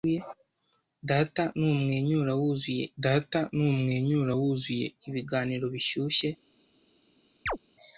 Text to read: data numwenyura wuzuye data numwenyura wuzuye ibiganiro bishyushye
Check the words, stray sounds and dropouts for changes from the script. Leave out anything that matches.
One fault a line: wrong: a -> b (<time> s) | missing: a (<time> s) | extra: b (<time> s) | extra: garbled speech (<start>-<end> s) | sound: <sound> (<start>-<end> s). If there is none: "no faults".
sound: chirp (7.5-7.6 s)